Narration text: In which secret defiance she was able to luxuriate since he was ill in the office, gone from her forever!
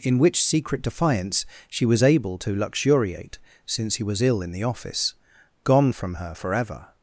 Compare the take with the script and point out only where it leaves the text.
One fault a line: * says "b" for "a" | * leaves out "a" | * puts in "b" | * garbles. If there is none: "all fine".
all fine